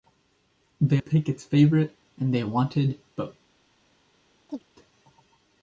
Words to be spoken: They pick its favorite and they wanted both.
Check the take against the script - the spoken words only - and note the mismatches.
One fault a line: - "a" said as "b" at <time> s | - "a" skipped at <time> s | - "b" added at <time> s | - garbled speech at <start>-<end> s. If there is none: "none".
none